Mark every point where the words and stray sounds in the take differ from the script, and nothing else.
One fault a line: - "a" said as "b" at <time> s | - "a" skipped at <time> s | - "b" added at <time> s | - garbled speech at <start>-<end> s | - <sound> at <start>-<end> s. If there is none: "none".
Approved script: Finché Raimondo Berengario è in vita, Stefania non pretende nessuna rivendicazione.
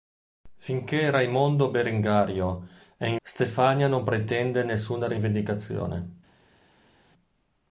- "vita" skipped at 3.2 s